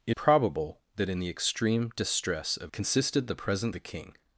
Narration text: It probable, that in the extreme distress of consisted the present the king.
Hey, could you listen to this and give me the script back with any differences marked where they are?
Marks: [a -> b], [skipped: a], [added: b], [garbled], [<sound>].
It probable, that in the extreme distress of consisted the present the king.